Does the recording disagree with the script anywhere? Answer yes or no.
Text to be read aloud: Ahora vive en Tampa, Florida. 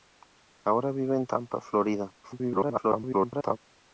yes